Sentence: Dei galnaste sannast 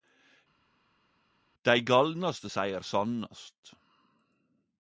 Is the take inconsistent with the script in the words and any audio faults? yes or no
yes